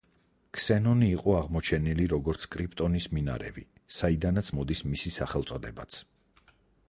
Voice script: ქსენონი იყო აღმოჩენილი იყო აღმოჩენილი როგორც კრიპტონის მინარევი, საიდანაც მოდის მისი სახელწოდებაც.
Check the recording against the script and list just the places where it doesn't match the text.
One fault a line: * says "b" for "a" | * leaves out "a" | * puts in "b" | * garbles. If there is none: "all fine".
* leaves out "იყო აღმოჩენილი"